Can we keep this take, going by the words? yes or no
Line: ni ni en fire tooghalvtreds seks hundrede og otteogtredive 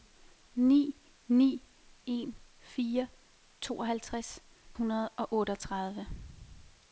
no